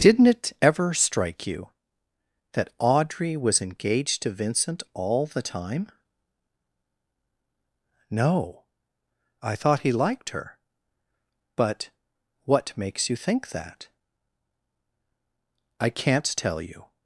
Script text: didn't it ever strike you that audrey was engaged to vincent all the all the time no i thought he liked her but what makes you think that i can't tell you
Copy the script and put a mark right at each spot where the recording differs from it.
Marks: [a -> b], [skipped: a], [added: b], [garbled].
didn't it ever strike you that audrey was engaged to vincent all the [skipped: all the] time no i thought he liked her but what makes you think that i can't tell you